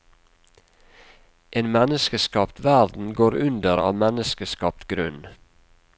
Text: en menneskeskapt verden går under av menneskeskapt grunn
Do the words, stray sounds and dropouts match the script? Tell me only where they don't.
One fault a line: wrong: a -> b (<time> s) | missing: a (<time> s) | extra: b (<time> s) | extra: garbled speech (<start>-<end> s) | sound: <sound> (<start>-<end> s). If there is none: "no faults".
no faults